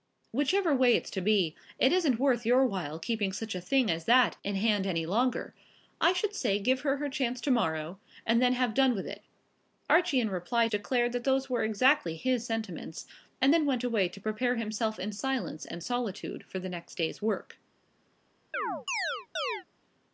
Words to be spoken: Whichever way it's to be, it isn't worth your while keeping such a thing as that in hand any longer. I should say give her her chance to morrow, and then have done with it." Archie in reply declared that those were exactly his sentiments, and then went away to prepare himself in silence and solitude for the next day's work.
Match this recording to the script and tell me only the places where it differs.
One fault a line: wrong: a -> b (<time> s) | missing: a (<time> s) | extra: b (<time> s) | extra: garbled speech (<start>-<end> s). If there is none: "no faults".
no faults